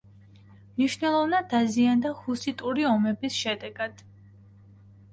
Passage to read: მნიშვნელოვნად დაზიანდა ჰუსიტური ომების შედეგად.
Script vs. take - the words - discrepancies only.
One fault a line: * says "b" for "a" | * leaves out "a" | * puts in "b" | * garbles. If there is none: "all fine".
all fine